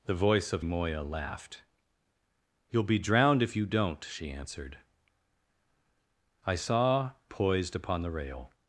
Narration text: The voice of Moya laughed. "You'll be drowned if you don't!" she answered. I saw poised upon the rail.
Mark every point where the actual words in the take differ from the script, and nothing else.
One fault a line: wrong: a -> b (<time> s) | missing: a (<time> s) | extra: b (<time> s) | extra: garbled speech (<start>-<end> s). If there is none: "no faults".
no faults